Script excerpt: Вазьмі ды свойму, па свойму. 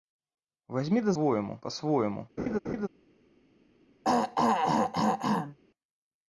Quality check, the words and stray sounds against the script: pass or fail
fail